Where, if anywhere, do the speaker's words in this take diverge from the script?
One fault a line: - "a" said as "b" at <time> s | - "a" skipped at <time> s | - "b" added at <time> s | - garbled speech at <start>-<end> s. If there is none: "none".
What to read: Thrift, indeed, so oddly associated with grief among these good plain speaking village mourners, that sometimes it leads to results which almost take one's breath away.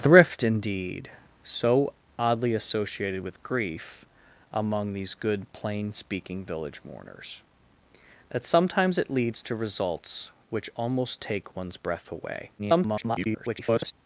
- garbled speech at 12.6-13.9 s